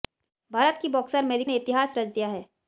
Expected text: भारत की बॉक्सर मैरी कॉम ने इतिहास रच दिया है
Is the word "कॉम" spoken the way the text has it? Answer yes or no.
no